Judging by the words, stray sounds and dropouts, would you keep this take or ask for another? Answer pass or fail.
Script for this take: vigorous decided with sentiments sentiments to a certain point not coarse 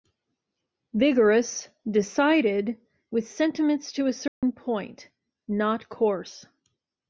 fail